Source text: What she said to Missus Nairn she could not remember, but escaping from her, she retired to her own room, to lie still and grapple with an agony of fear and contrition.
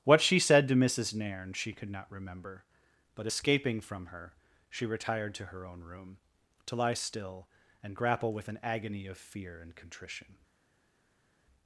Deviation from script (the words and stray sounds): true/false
false